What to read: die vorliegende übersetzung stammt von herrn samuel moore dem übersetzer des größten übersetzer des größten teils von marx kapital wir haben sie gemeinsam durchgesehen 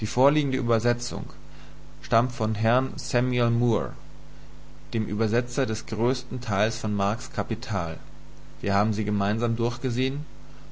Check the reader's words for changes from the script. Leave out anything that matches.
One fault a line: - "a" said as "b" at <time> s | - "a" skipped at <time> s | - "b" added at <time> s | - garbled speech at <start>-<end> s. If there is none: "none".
- "übersetzer des größten" skipped at 6.4 s